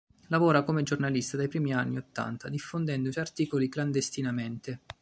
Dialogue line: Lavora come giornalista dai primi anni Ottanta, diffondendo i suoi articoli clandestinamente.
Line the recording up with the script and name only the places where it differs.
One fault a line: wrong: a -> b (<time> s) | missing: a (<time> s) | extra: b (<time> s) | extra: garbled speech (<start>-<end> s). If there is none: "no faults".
no faults